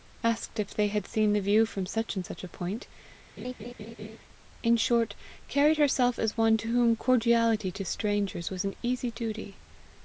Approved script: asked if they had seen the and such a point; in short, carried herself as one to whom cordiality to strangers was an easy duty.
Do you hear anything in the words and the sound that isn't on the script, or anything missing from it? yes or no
yes